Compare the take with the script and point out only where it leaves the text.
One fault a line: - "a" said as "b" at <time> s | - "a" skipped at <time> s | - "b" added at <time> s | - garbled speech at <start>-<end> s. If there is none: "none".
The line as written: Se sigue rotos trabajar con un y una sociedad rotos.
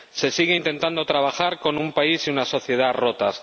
- "rotos" said as "intentando" at 0.5 s
- "país" added at 1.9 s